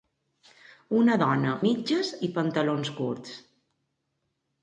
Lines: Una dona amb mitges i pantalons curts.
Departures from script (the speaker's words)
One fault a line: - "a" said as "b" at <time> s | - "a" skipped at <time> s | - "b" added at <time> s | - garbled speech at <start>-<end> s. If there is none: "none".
- "amb" skipped at 1.5 s